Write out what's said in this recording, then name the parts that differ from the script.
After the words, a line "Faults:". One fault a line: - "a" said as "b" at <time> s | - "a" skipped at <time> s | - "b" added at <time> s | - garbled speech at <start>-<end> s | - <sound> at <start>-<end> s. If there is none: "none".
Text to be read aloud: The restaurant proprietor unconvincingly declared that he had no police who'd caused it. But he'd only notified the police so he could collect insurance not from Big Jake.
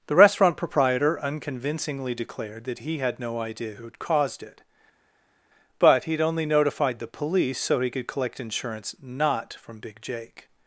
The restaurant proprietor unconvincingly declared that he had no idea who'd caused it. But he'd only notified the police so he could collect insurance not from Big Jake.
Faults:
- "police" said as "idea" at 3.4 s